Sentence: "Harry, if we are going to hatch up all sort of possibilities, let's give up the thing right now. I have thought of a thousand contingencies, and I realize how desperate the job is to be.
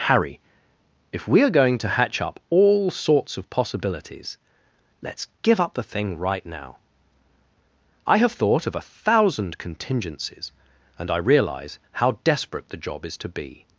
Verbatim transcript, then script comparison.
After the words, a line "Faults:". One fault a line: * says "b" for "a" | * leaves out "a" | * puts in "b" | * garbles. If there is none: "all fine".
"Harry, if we are going to hatch up all sorts of possibilities, let's give up the thing right now. I have thought of a thousand contingencies, and I realize how desperate the job is to be.
Faults:
* says "sorts" for "sort"